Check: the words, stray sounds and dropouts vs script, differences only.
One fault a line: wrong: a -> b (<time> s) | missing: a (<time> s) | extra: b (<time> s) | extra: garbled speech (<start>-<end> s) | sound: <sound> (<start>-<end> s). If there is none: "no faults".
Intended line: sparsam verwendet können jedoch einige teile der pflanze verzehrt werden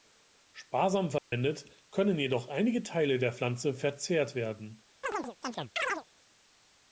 sound: dropout (1.2-1.3 s)
sound: chirp (5.0-6.0 s)